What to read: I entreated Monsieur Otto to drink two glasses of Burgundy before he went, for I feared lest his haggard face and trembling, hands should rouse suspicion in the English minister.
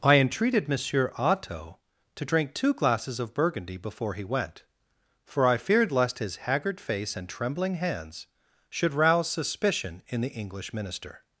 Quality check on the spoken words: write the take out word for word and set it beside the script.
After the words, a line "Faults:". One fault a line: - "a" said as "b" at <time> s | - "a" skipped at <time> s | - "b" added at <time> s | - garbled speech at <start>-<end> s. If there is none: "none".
I entreated Monsieur Otto to drink two glasses of Burgundy before he went, for I feared lest his haggard face and trembling, hands should rouse suspicion in the English minister.
Faults:
none